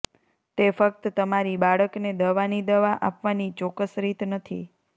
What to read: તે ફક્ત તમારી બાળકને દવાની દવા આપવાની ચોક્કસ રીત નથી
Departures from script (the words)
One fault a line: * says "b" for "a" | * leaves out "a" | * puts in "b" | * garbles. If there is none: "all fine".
all fine